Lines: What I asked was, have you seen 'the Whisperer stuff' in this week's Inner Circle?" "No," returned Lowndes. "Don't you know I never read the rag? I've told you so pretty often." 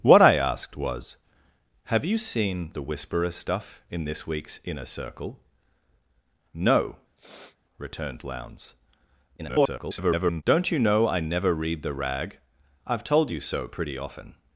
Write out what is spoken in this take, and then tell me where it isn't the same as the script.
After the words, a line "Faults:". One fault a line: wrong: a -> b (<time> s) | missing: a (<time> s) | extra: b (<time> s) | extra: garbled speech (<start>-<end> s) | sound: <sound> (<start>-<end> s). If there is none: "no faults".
What I asked was, have you seen 'the Whisperer stuff' in this week's Inner Circle?" "No," returned Lowndes. [garbled] "Don't you know I never read the rag? I've told you so pretty often."
Faults:
sound: sniff (7.2-7.6 s)
extra: garbled speech (9.4-10.4 s)